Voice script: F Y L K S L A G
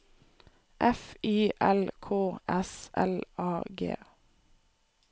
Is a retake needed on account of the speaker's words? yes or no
no